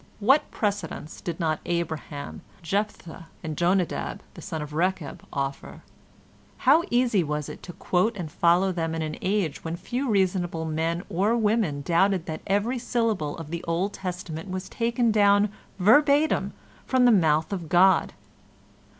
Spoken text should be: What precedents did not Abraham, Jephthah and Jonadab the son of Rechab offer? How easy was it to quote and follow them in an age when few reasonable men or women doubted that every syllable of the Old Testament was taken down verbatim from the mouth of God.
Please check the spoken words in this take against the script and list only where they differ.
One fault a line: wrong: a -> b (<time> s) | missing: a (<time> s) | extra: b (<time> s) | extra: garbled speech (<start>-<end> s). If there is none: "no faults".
no faults